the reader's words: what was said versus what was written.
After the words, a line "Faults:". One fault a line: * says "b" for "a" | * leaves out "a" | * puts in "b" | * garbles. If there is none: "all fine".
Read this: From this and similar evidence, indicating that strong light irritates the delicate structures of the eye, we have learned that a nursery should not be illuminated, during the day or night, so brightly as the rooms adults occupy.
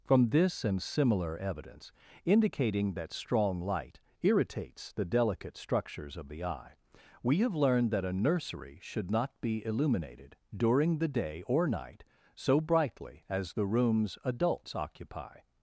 From this and similar evidence, indicating that strong light irritates the delicate structures of the eye, we have learned that a nursery should not be illuminated, during the day or night, so brightly as the rooms adults occupy.
Faults:
all fine